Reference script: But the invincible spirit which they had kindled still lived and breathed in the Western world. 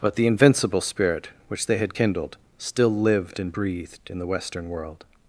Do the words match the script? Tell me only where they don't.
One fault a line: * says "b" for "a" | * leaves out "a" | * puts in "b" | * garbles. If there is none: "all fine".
all fine